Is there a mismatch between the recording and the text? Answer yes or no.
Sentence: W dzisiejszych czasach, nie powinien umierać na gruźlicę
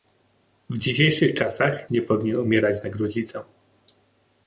no